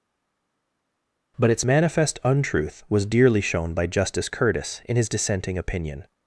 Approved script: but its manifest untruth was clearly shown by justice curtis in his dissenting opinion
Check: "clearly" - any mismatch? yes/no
yes